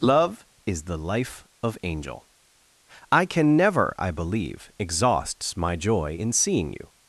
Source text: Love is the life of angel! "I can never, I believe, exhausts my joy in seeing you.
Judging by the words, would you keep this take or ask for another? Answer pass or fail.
pass